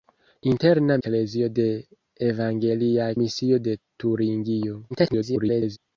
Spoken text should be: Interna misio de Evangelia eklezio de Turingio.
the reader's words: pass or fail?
fail